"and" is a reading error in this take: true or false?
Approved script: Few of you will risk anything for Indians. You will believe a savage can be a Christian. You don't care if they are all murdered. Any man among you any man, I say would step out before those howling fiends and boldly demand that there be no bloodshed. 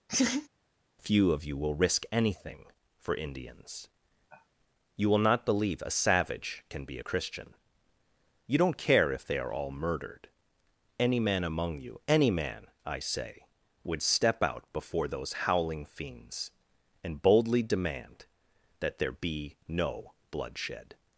false